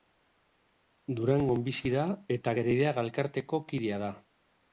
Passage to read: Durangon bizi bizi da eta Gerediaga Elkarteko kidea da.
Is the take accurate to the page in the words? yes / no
no